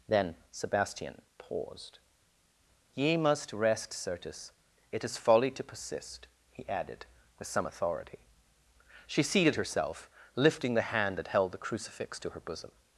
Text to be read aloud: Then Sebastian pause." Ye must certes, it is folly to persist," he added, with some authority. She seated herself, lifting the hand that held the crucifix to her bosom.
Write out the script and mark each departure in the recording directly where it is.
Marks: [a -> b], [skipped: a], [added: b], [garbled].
Then Sebastian [pause." -> paused] Ye must [added: rest] certes, it is folly to persist," he added, with some authority. She seated herself, lifting the hand that held the crucifix to her bosom.